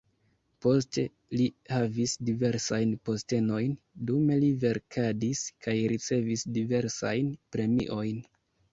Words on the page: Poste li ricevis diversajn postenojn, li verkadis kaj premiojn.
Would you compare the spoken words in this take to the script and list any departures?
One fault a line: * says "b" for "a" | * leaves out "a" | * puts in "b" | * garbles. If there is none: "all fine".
* says "havis" for "ricevis"
* puts in "dume"
* puts in "ricevis diversajn"